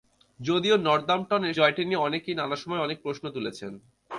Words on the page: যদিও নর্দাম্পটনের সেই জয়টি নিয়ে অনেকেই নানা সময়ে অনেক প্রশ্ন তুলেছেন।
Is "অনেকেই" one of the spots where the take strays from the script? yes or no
no